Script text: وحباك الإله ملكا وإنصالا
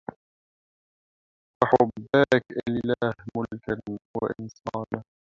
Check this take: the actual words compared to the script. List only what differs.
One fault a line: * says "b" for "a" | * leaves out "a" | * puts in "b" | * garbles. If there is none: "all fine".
all fine